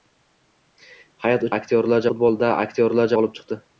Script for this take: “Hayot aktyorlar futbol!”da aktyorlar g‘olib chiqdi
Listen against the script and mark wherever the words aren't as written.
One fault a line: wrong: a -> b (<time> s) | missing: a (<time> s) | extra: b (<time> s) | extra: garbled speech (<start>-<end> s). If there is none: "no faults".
no faults